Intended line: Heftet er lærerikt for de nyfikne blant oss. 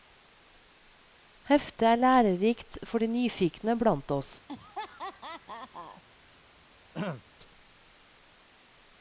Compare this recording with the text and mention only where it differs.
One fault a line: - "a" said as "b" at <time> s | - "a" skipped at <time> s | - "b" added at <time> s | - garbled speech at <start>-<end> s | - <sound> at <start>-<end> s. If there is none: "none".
- laugh at 4.5-6.0 s
- throat clearing at 6.9-7.2 s